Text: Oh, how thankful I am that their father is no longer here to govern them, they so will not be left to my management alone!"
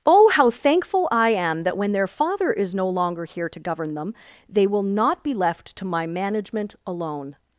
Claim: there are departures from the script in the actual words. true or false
true